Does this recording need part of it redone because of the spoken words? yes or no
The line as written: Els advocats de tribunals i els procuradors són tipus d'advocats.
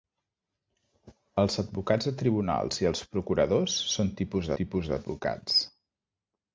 yes